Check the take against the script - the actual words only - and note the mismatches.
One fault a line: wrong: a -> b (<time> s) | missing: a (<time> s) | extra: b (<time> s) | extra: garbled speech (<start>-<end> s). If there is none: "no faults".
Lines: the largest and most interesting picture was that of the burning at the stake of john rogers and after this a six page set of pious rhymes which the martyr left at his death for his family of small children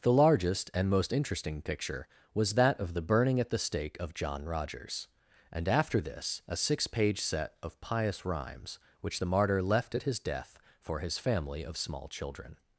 no faults